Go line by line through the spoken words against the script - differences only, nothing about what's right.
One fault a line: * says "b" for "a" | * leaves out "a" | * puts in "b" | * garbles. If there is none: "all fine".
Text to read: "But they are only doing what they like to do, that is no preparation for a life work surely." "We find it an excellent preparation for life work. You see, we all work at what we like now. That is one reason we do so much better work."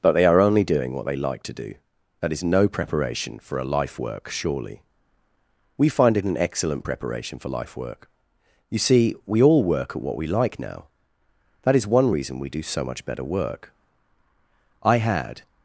* puts in "I had"